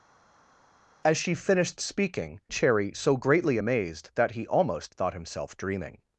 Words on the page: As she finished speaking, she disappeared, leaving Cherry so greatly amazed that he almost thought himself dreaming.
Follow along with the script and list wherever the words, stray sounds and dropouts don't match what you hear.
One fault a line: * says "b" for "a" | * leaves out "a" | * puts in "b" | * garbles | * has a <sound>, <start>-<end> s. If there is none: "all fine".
* leaves out "she disappeared leaving"